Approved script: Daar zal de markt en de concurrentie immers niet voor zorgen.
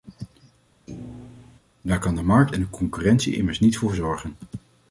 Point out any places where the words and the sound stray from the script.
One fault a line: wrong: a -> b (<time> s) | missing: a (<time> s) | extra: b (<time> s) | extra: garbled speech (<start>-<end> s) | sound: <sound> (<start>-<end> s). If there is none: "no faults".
sound: thud (0.9-1.6 s)
wrong: zal -> kan (2.0 s)